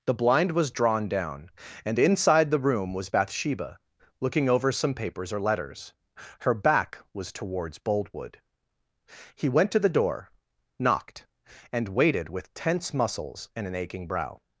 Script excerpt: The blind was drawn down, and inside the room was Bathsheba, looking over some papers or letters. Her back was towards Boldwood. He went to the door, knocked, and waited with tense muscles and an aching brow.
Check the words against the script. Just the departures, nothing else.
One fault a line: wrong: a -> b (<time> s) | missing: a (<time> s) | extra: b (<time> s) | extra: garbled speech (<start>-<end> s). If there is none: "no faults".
no faults